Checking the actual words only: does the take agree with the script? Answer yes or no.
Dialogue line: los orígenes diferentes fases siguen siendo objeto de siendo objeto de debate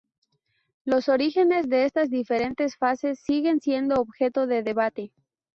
no